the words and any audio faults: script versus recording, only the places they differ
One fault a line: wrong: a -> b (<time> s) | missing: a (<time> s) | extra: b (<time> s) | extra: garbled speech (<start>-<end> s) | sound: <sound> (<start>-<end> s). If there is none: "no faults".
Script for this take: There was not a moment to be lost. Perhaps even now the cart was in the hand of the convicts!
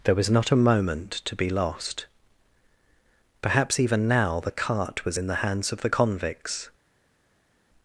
wrong: hand -> hands (5.4 s)